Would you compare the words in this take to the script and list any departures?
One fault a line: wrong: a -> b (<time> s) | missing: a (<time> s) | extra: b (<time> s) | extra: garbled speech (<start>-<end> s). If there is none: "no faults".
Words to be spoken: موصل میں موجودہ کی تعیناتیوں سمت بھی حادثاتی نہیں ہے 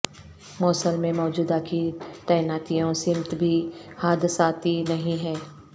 no faults